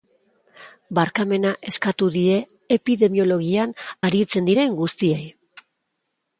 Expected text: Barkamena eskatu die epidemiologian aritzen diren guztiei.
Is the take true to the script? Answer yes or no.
yes